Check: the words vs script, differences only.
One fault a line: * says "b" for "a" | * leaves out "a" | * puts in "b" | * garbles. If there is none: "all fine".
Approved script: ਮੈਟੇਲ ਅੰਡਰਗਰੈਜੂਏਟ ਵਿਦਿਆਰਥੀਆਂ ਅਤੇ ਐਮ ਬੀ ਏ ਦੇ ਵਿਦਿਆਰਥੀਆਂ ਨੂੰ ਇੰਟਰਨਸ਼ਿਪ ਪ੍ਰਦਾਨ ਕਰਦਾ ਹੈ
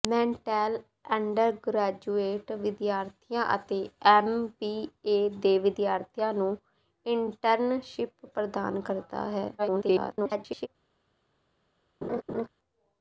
* garbles